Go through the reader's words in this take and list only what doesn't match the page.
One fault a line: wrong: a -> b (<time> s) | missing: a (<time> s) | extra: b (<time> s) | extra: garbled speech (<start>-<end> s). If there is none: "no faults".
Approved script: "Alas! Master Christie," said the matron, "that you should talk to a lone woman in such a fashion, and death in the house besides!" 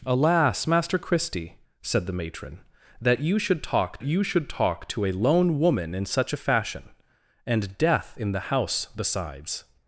extra: you should talk (4.0 s)